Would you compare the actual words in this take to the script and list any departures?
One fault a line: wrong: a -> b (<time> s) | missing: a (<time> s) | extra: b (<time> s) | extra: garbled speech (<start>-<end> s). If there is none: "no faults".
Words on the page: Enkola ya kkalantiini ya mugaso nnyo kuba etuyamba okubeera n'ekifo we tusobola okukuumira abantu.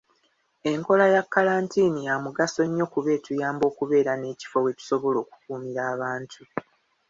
no faults